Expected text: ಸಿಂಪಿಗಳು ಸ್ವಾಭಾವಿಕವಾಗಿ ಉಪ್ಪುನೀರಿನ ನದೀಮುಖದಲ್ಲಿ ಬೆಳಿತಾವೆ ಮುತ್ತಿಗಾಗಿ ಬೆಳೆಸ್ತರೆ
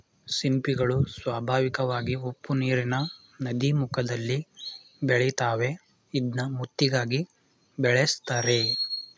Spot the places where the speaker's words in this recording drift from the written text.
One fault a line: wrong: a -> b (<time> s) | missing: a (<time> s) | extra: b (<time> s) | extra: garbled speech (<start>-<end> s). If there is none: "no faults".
extra: ಇದ್ನ (6.1 s)